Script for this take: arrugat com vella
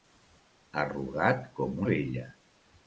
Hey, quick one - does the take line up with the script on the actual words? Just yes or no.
yes